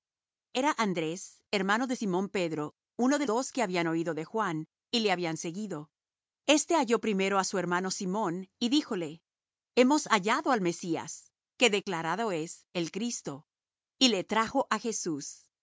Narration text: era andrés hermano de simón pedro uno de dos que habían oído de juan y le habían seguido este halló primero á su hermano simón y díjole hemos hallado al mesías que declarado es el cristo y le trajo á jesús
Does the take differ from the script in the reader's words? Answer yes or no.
no